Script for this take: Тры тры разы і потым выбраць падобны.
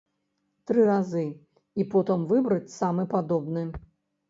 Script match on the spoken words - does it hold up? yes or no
no